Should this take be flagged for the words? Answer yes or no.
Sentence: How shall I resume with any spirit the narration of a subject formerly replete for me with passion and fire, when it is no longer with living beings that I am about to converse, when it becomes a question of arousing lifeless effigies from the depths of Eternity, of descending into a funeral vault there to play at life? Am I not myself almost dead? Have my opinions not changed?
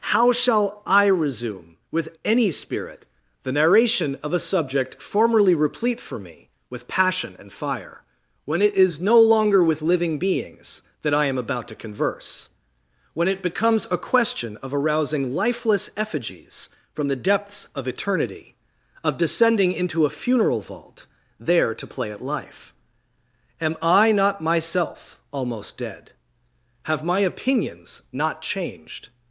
no